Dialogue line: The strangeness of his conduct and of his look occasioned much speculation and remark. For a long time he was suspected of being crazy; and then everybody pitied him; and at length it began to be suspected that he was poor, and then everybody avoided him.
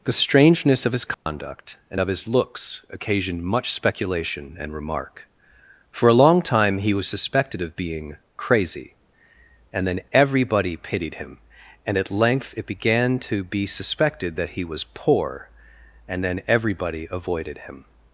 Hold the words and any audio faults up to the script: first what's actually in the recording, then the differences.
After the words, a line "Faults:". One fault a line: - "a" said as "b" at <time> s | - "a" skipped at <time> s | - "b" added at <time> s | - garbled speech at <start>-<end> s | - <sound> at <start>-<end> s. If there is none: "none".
The strangeness of his conduct and of his looks occasioned much speculation and remark. For a long time he was suspected of being crazy; and then everybody pitied him; and at length it began to be suspected that he was poor, and then everybody avoided him.
Faults:
- dropout at 1.1-1.3 s
- "look" said as "looks" at 2.3 s